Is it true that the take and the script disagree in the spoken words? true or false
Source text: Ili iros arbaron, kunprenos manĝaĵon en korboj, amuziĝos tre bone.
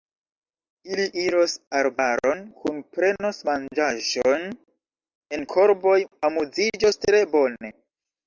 false